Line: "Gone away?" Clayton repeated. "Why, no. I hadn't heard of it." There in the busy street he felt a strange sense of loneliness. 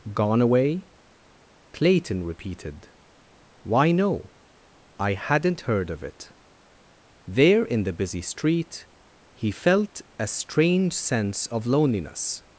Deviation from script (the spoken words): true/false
false